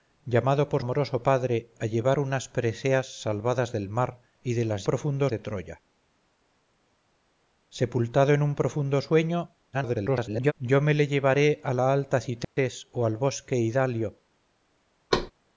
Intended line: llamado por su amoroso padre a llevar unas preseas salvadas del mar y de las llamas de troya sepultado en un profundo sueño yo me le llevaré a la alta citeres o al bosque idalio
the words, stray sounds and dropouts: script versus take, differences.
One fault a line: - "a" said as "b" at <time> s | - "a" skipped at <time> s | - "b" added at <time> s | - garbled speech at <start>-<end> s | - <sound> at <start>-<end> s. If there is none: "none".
- "su" skipped at 0.8 s
- "llamas" said as "profundo" at 4.8 s
- garbled speech at 9.7-10.5 s
- dropout at 12.4-12.6 s
- thud at 15.1-15.3 s